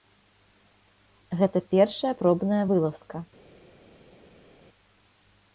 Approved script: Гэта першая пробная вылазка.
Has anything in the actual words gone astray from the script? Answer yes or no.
no